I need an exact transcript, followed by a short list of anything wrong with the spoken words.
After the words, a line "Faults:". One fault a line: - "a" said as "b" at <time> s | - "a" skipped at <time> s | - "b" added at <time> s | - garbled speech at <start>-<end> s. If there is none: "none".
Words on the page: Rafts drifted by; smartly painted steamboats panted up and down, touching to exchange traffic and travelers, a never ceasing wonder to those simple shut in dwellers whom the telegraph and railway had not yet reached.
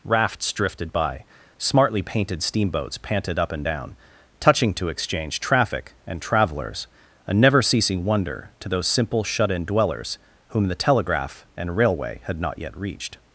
Rafts drifted by; smartly painted steamboats panted up and down, touching to exchange traffic and travelers, a never ceasing wonder to those simple shut in dwellers whom the telegraph and railway had not yet reached.
Faults:
none